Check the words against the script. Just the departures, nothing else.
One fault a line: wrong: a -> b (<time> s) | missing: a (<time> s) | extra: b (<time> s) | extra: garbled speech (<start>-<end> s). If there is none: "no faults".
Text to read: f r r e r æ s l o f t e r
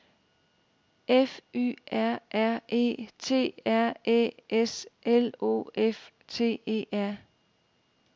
extra: y (1.5 s)
extra: t (3.2 s)